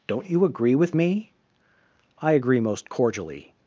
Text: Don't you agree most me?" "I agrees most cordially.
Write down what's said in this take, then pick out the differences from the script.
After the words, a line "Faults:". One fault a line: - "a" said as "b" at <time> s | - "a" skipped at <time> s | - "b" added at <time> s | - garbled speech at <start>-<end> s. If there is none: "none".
Don't you agree with me?" "I agree most cordially.
Faults:
- "most" said as "with" at 0.7 s
- "agrees" said as "agree" at 2.3 s